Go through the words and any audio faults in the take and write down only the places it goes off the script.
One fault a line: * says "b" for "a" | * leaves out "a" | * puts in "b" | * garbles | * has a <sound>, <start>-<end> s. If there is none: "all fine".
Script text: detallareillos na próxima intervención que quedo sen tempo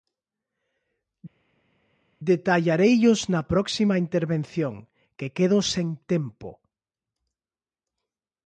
all fine